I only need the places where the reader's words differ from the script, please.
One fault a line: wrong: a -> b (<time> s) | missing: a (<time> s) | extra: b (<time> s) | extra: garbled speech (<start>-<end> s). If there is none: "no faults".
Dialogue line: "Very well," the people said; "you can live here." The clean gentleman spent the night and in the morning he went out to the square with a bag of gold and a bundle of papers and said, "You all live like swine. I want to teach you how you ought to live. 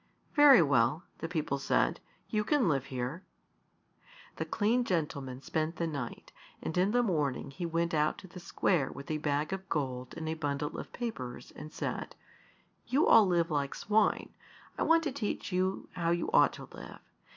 no faults